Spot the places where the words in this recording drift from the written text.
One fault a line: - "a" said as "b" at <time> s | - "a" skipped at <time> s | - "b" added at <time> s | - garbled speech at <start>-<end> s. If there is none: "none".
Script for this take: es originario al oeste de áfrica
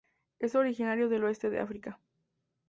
- "al" said as "del" at 1.1 s